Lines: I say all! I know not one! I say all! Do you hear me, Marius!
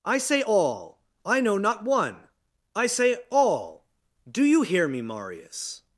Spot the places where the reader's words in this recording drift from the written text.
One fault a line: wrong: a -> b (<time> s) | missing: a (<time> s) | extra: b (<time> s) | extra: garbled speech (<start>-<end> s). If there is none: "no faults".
no faults